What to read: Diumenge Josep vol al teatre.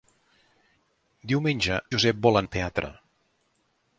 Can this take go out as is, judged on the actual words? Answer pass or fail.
pass